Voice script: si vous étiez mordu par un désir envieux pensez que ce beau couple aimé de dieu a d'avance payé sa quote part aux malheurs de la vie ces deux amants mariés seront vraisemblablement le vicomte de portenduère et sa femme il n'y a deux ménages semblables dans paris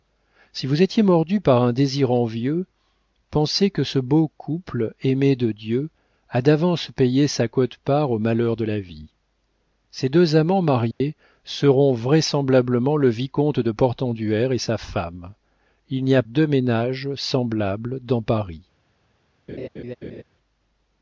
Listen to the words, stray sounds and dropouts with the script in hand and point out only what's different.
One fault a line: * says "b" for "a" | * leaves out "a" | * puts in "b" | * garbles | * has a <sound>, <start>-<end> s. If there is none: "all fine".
* has a dropout, 10.9-11.0 s
* has a laugh, 19.5-20.2 s